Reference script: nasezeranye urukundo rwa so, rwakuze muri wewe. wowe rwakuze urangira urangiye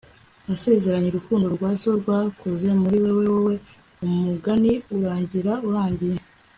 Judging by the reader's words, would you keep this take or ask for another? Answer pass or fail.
fail